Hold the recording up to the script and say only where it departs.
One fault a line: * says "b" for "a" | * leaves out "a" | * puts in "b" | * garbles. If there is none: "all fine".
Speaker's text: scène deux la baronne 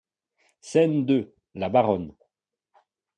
all fine